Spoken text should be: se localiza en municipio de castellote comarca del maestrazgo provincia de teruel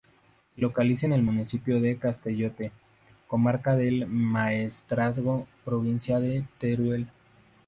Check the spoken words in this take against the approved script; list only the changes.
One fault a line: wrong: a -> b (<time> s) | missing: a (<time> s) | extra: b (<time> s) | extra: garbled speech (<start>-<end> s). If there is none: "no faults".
extra: el (1.1 s)